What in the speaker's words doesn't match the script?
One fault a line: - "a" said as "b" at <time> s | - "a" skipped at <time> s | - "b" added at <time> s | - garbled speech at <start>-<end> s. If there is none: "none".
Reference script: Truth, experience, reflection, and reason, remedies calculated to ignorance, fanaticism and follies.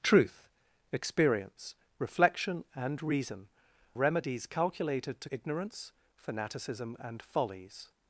none